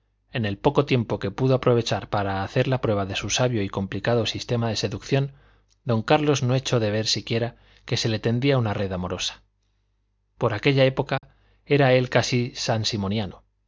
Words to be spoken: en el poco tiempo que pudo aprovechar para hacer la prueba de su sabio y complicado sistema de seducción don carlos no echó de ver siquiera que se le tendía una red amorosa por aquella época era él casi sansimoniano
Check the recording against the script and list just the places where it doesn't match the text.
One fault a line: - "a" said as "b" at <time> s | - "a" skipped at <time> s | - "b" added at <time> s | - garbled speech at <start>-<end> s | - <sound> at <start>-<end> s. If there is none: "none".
- dropout at 11.2-11.2 s